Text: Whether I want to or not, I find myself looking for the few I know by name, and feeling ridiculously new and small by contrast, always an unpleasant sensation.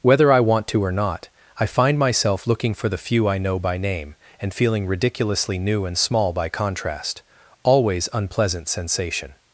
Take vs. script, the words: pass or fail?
fail